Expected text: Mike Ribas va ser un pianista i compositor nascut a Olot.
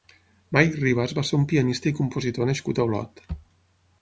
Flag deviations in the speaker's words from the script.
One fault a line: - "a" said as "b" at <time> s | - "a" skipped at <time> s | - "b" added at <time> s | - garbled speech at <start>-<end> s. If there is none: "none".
none